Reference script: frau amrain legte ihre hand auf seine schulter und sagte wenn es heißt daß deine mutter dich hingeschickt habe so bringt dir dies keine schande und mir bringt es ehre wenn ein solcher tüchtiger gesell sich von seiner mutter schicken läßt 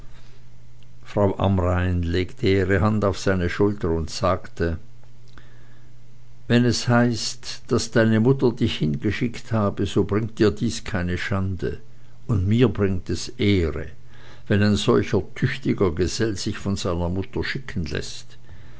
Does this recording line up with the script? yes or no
yes